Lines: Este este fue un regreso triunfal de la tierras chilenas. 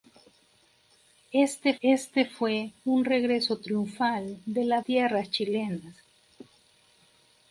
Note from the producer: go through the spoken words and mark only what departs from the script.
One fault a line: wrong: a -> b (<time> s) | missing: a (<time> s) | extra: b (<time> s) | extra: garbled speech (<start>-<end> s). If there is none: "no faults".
no faults